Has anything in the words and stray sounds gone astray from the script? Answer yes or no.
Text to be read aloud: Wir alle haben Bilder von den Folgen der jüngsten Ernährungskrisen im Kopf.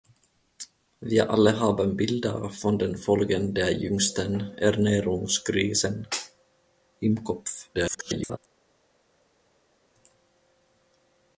yes